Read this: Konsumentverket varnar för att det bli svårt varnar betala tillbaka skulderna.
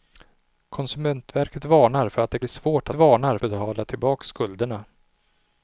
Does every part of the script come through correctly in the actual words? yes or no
yes